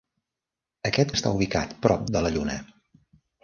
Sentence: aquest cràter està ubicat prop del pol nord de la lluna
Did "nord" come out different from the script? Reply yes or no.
yes